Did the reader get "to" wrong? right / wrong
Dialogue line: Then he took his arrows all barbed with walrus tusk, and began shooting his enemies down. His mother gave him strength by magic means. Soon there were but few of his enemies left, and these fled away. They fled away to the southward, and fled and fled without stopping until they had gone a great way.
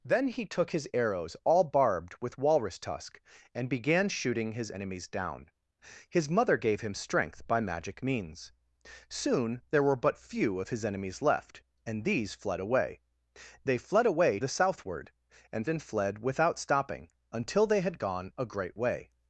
wrong